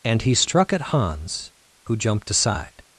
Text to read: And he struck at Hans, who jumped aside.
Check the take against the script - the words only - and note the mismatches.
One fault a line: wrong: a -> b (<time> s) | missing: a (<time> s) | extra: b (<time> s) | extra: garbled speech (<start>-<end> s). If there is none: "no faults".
no faults